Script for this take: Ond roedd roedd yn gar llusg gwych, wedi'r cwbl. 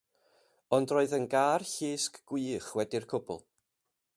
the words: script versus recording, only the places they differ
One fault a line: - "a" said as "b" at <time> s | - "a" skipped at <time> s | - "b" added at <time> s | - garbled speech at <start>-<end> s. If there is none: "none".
- "roedd" skipped at 1.1 s